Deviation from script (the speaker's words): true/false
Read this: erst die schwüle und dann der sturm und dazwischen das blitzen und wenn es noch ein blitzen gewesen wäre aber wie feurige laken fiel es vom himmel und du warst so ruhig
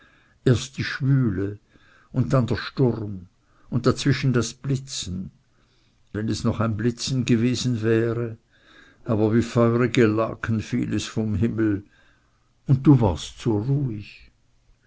true